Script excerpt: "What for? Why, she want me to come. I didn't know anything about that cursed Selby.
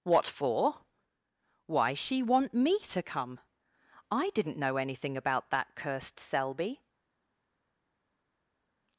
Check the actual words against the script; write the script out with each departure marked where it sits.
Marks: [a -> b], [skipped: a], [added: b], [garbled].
"What for? Why, she want me to come. I didn't know anything about that cursed Selby.